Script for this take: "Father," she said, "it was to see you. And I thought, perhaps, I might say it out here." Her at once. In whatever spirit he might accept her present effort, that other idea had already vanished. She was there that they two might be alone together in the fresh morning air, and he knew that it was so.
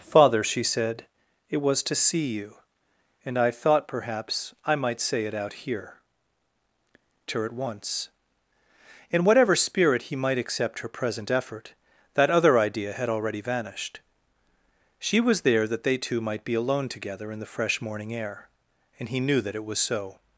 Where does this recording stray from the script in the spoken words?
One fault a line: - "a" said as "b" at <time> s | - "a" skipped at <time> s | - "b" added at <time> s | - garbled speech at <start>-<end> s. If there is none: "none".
none